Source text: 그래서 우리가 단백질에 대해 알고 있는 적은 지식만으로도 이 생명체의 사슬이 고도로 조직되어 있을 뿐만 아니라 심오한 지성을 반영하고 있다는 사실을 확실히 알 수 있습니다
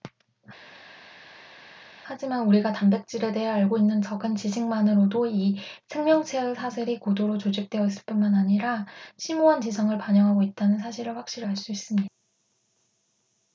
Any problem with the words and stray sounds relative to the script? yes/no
yes